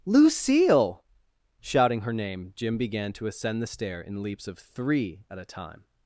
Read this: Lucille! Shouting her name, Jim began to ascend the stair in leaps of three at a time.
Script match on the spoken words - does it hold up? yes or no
yes